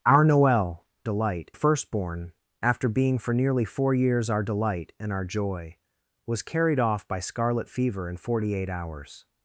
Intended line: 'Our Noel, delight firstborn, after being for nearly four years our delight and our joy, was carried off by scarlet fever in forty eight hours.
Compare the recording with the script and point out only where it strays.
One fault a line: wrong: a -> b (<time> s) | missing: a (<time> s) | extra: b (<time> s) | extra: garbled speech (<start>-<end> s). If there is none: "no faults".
no faults